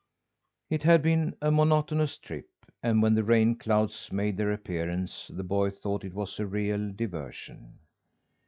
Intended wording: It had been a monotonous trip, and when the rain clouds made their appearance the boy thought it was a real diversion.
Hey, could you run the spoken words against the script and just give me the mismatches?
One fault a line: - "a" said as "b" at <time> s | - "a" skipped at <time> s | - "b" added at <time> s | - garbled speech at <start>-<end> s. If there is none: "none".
none